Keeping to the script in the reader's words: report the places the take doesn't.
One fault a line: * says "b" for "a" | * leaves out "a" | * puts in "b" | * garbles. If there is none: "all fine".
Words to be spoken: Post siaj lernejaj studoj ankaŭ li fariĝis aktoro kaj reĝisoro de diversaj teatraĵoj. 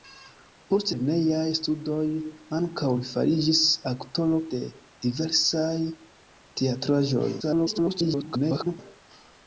* leaves out "siaj"
* leaves out "kaj reĝisoro"
* garbles